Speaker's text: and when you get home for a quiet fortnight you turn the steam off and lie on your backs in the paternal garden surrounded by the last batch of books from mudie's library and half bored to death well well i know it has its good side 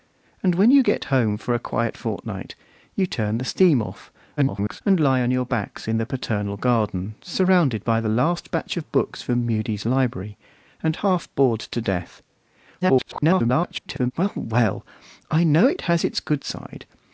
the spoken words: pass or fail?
fail